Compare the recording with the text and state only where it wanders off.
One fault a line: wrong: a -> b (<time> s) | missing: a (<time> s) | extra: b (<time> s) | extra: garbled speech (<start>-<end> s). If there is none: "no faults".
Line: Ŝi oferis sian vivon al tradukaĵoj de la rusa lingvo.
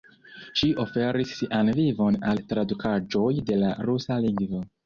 no faults